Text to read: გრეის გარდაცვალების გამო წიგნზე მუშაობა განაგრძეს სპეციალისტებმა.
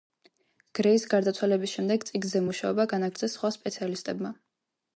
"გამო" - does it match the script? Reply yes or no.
no